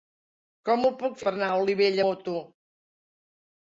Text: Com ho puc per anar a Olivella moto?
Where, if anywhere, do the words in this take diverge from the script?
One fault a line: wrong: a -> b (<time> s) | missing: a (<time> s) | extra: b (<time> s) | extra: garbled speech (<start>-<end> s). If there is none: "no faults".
no faults